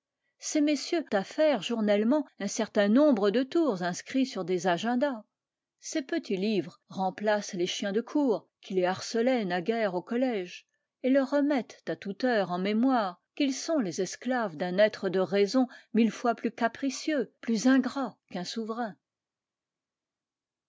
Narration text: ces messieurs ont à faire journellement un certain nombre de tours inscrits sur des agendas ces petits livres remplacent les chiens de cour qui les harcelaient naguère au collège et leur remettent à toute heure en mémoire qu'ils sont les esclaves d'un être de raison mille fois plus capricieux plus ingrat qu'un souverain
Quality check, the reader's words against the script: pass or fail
fail